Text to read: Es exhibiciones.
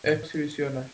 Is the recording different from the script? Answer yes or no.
no